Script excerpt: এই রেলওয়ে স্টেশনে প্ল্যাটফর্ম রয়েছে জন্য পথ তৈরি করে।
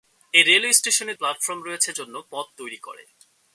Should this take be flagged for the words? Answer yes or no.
no